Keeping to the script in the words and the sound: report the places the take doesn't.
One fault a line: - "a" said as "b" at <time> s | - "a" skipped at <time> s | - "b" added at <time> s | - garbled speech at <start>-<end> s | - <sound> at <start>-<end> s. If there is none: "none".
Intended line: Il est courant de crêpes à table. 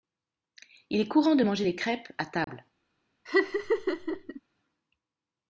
- "manger les" added at 1.4 s
- dropout at 2.4-2.5 s
- laugh at 3.3-4.4 s